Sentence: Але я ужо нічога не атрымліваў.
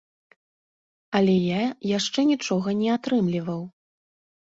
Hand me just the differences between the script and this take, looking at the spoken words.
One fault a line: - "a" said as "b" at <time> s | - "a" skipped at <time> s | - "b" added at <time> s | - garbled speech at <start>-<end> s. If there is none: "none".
- "ужо" said as "яшчэ" at 2.0 s